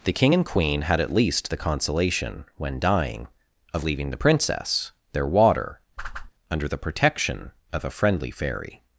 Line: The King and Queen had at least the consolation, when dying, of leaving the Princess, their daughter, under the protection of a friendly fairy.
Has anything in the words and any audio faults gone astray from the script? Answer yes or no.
yes